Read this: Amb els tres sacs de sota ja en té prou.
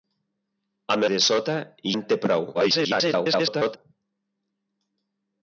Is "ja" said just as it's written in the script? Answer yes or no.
no